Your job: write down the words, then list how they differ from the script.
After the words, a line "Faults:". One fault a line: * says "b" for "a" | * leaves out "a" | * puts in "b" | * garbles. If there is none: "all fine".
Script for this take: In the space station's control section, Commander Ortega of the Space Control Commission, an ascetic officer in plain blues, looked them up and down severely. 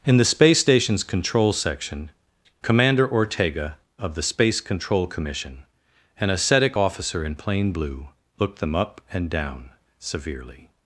In the space station's control section, Commander Ortega of the Space Control Commission, an ascetic officer in plain blue, looked them up and down severely.
Faults:
* says "blue" for "blues"